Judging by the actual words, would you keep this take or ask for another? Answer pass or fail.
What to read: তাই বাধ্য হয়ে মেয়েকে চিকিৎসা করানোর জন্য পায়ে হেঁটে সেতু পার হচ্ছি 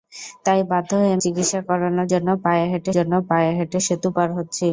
fail